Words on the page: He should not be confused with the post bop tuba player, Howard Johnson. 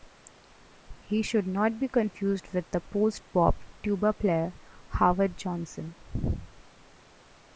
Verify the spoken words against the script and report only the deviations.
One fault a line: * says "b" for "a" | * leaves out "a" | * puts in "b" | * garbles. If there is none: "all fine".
all fine